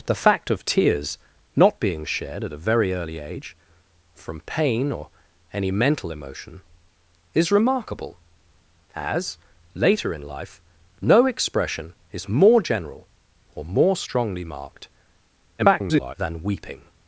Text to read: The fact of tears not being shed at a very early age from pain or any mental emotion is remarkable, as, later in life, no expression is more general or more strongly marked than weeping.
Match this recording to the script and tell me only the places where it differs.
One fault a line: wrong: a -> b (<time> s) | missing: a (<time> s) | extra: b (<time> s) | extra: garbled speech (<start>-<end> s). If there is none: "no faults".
extra: garbled speech (15.6-16.1 s)